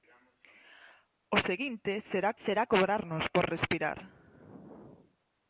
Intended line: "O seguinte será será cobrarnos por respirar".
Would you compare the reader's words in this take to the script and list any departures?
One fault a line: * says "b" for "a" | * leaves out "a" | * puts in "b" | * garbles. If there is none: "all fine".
all fine